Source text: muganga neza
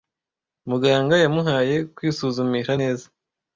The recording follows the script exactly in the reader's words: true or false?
false